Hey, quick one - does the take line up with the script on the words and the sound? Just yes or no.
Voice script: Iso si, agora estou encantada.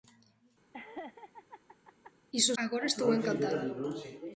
no